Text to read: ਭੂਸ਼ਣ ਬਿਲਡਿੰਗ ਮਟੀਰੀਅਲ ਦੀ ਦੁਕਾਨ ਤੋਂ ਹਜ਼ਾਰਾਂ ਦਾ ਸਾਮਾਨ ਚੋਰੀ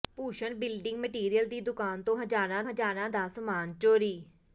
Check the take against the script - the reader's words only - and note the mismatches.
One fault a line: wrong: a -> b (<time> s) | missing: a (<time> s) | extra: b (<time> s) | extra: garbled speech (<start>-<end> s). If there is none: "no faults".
extra: ਹਜ਼ਾਰਾਂ (2.6 s)